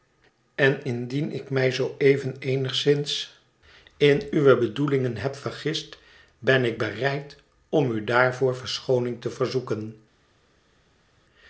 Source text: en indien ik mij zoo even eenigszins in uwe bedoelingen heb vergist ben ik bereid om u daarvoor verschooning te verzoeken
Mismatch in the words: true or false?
false